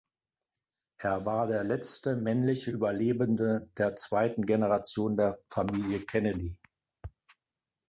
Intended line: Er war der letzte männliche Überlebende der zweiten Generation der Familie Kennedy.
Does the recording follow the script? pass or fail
pass